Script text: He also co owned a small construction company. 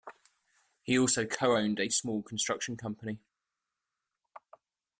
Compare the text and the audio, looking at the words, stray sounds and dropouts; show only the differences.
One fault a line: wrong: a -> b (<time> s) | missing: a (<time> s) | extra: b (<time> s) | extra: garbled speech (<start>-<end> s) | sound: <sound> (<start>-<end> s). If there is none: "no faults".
no faults